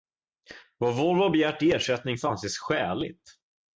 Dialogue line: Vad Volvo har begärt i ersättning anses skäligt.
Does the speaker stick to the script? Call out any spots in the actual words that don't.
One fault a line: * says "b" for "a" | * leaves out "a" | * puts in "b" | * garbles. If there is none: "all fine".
* puts in "får"